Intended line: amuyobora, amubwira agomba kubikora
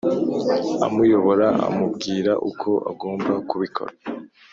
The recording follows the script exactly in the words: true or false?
false